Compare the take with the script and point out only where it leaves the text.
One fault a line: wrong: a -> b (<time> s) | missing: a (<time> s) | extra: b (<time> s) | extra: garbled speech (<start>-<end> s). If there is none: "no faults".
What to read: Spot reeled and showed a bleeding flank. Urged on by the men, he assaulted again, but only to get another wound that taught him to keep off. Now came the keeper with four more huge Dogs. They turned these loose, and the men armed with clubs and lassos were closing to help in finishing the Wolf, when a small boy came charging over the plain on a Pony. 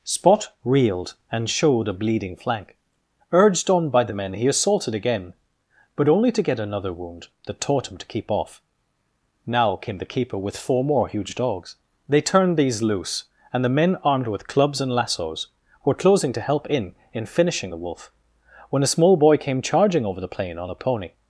extra: in (17.1 s)